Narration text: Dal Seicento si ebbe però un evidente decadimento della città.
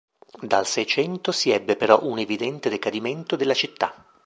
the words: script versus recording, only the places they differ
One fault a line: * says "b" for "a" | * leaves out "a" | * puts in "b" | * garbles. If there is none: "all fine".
all fine